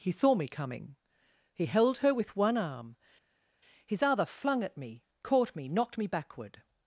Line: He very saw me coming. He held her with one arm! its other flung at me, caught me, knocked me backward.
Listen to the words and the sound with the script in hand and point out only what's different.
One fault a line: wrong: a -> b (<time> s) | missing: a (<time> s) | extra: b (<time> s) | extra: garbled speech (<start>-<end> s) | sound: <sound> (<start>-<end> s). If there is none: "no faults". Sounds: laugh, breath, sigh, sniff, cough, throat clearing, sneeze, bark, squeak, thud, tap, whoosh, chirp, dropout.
missing: very (0.1 s)
wrong: its -> his (3.9 s)